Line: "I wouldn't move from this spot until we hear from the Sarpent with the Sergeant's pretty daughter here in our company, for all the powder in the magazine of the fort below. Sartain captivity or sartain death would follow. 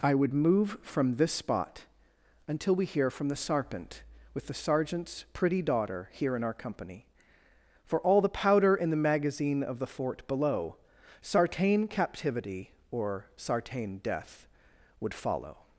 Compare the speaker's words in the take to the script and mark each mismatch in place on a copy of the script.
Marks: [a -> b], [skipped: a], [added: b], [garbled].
"I [wouldn't -> would] move from this spot until we hear from the Sarpent with the Sergeant's pretty daughter here in our company, for all the powder in the magazine of the fort below. Sartain captivity or sartain death would follow.